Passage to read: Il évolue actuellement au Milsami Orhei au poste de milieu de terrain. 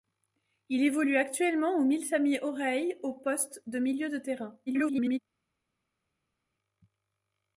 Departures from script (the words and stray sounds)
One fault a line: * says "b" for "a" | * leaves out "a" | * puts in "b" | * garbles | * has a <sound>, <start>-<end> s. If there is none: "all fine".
* garbles